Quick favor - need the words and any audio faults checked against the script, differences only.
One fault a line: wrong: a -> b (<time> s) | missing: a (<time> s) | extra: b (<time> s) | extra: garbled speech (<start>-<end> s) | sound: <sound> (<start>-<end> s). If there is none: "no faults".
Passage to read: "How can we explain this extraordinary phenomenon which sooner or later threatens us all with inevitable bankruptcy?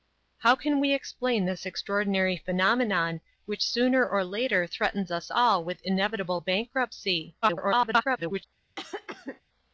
extra: garbled speech (7.4-8.4 s)
sound: cough (8.8-9.4 s)